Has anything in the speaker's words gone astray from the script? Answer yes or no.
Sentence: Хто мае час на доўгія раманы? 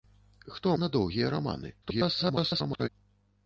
yes